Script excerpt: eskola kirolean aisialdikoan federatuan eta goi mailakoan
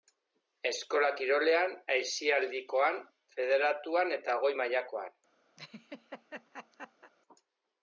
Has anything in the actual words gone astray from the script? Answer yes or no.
no